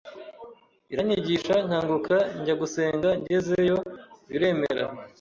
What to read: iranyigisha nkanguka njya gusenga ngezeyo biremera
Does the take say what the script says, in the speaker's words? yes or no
yes